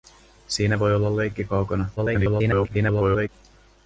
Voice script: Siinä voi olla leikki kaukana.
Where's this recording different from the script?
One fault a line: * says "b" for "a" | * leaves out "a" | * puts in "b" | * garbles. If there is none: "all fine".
* garbles